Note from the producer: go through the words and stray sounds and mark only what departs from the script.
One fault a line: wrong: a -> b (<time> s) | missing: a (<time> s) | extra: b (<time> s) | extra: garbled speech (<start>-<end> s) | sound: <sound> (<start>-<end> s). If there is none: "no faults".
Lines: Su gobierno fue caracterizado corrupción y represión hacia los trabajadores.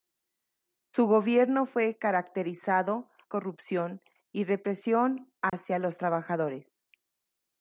sound: dropout (5.5-5.5 s)